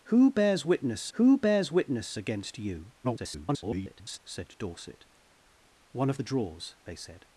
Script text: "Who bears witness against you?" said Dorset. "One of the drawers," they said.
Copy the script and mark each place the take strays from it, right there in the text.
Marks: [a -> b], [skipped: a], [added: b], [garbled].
"Who bears witness [added: who bears witness] against you?" [garbled] said Dorset. "One of the drawers," they said.